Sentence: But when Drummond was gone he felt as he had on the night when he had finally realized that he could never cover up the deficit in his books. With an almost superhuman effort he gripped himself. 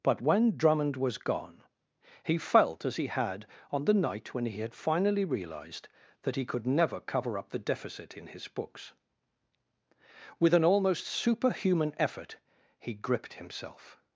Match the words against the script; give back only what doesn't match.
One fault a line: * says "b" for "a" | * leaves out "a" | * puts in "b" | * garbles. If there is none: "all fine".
all fine